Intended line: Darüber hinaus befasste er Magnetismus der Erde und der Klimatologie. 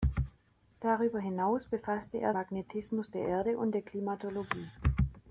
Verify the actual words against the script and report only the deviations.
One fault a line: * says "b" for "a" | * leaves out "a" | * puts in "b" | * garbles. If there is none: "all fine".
all fine